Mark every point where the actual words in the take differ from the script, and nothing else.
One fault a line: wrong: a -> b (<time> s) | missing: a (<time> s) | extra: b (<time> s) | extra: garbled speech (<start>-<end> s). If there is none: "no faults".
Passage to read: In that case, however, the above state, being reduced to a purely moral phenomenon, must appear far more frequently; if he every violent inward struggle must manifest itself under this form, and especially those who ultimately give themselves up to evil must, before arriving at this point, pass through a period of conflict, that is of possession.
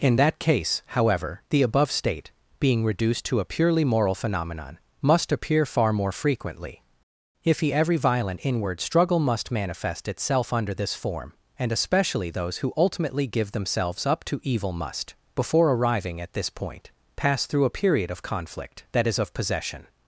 no faults